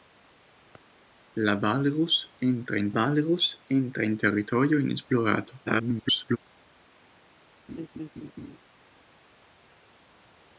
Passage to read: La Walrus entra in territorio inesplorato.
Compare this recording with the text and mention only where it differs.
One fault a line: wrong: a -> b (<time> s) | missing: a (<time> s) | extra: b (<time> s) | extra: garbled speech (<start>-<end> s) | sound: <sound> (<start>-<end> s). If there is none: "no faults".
extra: Walrus entra in (2.9 s)
extra: garbled speech (5.7-6.4 s)
sound: laugh (7.7-8.6 s)